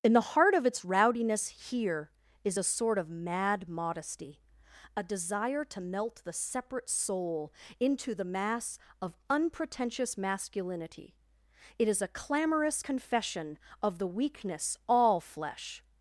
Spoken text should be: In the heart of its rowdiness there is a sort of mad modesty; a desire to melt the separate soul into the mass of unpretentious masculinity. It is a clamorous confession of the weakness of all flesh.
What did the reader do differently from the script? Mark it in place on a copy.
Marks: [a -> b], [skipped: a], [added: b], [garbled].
In the heart of its rowdiness [there -> here] is a sort of mad modesty; a desire to melt the separate soul into the mass of unpretentious masculinity. It is a clamorous confession of the weakness [skipped: of] all flesh.